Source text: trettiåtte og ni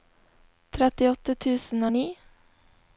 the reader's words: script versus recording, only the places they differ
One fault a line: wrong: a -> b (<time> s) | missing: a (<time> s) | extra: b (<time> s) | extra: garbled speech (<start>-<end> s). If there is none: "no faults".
extra: tusen (1.4 s)